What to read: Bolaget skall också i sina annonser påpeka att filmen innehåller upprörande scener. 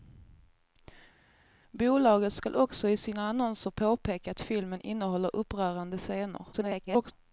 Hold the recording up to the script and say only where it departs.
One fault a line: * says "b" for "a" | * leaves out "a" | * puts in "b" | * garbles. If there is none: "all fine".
* garbles